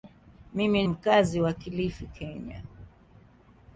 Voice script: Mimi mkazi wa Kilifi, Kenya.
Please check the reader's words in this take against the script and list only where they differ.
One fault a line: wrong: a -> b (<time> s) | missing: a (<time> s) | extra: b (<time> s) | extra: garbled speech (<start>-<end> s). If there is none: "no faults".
no faults